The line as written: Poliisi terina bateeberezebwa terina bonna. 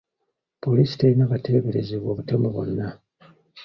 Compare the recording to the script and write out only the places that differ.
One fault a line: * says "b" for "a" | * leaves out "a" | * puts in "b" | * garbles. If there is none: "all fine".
* says "butemu" for "terina"